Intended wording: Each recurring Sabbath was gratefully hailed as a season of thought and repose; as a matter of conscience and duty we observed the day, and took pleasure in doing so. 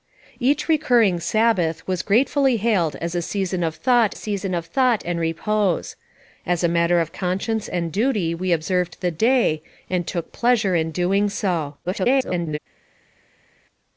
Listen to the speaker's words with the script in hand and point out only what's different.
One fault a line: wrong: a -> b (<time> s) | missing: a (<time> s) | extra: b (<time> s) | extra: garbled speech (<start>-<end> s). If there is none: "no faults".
extra: season of thought (4.1 s)
extra: garbled speech (11.8-12.6 s)